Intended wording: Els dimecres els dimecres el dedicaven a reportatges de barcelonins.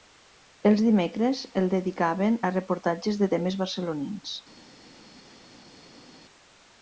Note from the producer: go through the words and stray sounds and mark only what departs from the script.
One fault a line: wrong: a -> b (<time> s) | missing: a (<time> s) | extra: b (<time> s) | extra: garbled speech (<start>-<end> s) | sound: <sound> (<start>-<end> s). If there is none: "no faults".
missing: els dimecres (1.4 s)
extra: temes (3.3 s)